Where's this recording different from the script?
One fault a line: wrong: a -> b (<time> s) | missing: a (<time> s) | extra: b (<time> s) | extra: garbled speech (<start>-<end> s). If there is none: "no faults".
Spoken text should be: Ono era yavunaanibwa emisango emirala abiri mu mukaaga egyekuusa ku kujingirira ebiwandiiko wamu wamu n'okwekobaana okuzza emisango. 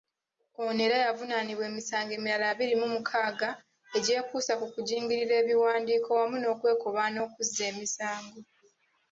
missing: wamu (6.4 s)